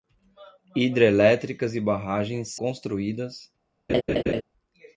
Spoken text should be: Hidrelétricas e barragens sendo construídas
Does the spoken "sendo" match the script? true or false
false